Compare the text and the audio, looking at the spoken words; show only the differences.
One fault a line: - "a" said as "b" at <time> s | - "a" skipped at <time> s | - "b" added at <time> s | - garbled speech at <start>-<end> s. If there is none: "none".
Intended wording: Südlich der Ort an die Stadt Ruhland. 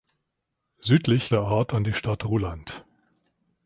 none